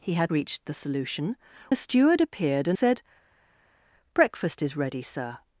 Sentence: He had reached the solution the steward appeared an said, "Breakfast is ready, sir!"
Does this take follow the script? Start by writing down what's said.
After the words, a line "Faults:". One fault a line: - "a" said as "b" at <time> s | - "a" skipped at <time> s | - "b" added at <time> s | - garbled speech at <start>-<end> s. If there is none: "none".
He had reached the solution the steward appeared an said, "Breakfast is ready, sir!"
Faults:
none